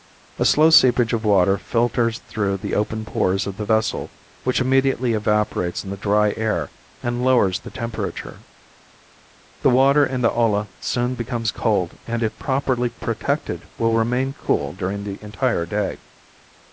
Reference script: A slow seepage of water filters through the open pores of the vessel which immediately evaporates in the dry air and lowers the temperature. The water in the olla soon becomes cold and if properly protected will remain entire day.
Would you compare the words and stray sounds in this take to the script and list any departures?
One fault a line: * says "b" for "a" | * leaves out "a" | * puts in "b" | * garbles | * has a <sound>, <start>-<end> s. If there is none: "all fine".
* puts in "cool during the"